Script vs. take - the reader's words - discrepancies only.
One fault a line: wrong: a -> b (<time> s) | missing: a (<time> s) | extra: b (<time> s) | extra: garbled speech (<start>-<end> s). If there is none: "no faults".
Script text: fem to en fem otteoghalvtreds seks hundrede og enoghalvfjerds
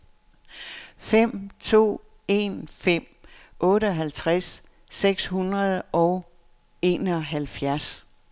no faults